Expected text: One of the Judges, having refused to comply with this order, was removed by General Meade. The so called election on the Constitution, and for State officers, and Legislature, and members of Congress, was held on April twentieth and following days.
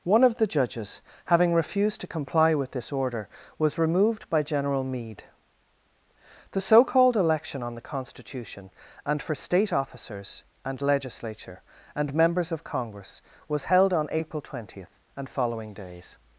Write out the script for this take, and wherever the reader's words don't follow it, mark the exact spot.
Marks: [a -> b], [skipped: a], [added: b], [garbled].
One of the Judges, having refused to comply with this order, was removed by General Meade. The so called election on the Constitution, and for State officers, and Legislature, and members of Congress, was held on April twentieth and following days.